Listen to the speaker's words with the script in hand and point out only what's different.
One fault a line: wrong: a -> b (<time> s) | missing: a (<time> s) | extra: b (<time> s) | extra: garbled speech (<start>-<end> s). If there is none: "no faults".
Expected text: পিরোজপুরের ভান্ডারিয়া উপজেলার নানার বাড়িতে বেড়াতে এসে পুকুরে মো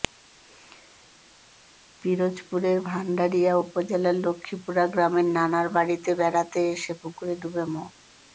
extra: লক্ষ্মীপুরা গ্রামের (4.3 s)
extra: ডুবে (7.4 s)